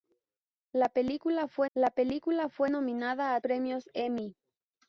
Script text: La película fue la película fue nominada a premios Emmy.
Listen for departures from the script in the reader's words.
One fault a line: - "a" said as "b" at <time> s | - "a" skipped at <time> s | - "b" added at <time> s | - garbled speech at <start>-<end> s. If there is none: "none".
none